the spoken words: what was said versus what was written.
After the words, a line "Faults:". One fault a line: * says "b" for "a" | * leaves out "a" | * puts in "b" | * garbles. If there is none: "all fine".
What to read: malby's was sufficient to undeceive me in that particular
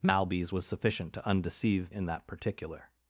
malby's was sufficient to undeceive in that particular
Faults:
* leaves out "me"